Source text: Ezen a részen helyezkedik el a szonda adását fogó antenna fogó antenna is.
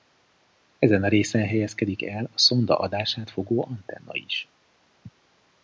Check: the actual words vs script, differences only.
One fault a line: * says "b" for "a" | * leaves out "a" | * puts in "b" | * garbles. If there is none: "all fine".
* leaves out "fogó antenna"